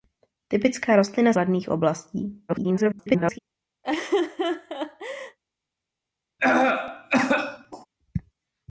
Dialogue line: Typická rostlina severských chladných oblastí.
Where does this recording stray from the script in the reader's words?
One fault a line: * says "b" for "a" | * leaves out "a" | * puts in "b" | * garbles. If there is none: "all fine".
* leaves out "severských"
* garbles